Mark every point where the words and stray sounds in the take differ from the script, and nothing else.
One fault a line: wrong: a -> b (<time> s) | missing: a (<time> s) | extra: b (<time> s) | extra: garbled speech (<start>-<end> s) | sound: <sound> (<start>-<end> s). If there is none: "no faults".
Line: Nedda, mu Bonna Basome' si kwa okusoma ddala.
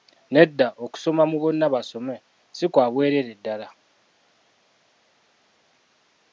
extra: okusoma (0.8 s)
wrong: okusoma -> bwereere (2.9 s)